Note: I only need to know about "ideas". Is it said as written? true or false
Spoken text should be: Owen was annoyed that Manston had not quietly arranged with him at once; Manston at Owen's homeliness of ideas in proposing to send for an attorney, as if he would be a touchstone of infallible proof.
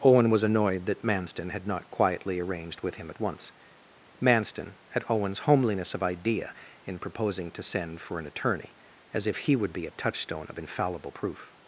false